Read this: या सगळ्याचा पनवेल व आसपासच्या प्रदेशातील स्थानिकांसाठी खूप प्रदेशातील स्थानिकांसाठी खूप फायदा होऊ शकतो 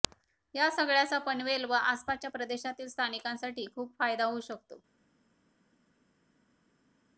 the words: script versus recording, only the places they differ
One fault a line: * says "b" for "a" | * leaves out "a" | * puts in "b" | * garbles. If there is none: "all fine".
* leaves out "प्रदेशातील स्थानिकांसाठी खूप"